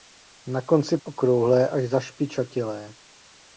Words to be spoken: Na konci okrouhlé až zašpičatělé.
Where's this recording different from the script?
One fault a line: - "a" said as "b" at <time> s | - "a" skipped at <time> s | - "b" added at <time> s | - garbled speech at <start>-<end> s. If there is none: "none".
none